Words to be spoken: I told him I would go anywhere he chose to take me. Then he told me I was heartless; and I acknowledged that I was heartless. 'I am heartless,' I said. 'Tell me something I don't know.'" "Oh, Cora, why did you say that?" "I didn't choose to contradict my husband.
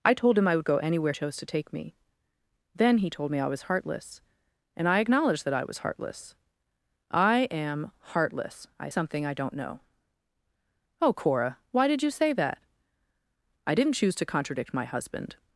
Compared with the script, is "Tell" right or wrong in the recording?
wrong